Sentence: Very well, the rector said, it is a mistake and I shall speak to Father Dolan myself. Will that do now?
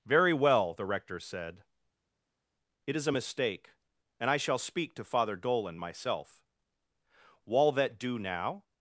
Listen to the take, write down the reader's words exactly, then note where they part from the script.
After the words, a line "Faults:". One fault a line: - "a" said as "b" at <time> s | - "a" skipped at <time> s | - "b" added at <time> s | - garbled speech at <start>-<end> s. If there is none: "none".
Very well, the rector said, it is a mistake and I shall speak to Father Dolan myself. Wall that do now?
Faults:
- "Will" said as "Wall" at 7.5 s